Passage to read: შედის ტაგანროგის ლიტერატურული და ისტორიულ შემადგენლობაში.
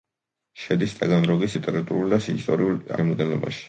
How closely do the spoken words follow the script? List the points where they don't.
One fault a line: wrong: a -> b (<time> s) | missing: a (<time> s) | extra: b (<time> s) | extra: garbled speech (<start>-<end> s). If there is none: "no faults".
no faults